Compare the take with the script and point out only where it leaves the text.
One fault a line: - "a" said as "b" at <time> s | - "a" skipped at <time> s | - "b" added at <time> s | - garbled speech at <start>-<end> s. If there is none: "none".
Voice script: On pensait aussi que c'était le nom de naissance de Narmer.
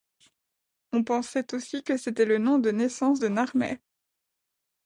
none